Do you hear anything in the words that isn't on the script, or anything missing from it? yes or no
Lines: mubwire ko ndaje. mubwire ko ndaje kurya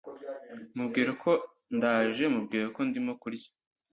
yes